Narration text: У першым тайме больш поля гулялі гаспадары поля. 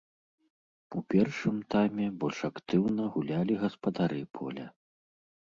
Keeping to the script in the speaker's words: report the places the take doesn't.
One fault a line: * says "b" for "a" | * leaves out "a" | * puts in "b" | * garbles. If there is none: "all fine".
* says "актыўна" for "поля"